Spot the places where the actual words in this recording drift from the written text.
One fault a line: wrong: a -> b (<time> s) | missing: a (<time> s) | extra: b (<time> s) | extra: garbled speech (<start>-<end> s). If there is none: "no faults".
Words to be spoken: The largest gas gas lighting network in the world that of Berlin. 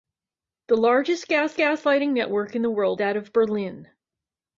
no faults